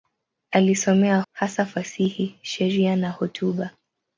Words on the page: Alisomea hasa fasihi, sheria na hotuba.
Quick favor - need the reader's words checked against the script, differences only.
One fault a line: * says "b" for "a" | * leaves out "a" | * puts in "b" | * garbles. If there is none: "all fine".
all fine